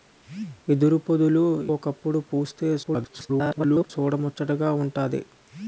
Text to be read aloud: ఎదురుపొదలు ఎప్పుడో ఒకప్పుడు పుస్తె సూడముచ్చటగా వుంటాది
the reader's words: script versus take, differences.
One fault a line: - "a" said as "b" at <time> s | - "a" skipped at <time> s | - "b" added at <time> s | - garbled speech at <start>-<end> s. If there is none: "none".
- "ఎప్పుడో" skipped at 1.4 s
- garbled speech at 2.8-3.9 s